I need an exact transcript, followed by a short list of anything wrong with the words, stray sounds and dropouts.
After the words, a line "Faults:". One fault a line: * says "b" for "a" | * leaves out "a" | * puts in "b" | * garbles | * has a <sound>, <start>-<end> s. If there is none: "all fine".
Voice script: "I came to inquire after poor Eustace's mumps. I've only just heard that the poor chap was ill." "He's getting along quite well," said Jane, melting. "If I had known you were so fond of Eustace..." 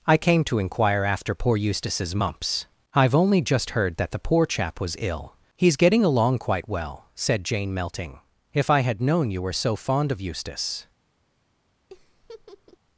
"I came to inquire after poor Eustace's mumps. I've only just heard that the poor chap was ill." "He's getting along quite well," said Jane, melting. "If I had known you were so fond of Eustace..."
Faults:
* has a laugh, 11.9-12.8 s